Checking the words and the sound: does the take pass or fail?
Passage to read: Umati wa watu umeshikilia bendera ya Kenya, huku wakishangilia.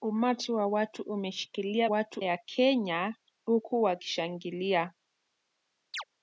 fail